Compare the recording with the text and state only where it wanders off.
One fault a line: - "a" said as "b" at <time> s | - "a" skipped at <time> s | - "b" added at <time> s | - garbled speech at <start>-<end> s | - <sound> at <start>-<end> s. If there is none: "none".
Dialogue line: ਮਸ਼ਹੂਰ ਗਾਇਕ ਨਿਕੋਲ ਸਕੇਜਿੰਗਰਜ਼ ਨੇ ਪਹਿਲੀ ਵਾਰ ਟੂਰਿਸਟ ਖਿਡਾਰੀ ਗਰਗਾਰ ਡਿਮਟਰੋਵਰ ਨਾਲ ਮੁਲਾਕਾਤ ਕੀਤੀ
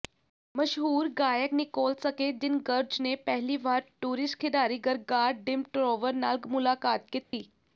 - dropout at 7.2-7.3 s